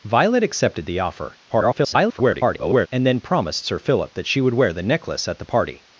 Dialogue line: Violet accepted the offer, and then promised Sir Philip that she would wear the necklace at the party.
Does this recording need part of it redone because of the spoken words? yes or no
yes